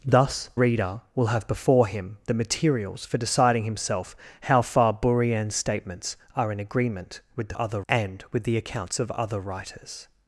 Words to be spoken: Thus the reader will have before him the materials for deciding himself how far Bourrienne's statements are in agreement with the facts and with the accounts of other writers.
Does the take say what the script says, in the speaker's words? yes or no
no